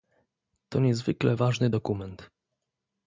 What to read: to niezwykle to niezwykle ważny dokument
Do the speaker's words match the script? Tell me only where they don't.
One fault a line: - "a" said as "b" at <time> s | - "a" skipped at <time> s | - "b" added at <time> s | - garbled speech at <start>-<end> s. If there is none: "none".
- "to niezwykle" skipped at 1.4 s